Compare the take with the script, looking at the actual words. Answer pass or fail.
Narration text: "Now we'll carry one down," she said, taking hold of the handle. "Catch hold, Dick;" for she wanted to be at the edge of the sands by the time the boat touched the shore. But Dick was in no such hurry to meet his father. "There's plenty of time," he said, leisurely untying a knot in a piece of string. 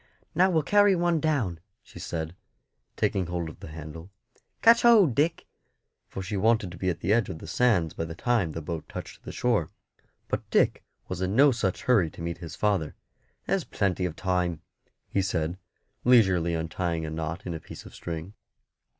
pass